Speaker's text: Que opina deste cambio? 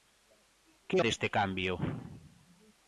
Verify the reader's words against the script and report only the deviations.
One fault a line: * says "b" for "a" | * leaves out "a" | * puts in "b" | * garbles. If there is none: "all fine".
* leaves out "opina"